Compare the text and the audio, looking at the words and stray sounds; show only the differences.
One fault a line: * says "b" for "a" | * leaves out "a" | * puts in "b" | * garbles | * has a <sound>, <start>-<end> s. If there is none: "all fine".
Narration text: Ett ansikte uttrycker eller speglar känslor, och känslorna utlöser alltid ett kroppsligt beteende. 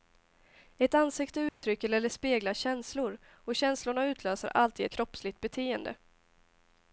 * has a dropout, 1.5-1.6 s
* leaves out "ett"